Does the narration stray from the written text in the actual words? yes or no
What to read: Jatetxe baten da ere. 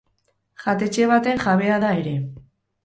yes